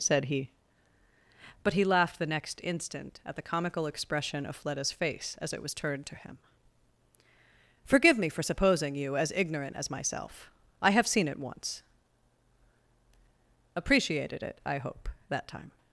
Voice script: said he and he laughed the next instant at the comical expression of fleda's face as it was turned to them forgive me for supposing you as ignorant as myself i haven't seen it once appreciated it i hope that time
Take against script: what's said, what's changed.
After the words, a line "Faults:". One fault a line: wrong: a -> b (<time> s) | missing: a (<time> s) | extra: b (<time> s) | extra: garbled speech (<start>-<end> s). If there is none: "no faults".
said he but he laughed the next instant at the comical expression of fleda's face as it was turned to him forgive me for supposing you as ignorant as myself i have seen it once appreciated it i hope that time
Faults:
wrong: and -> but (1.6 s)
wrong: them -> him (6.1 s)
wrong: haven't -> have (10.9 s)